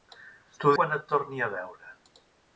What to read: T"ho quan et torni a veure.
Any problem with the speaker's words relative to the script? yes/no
no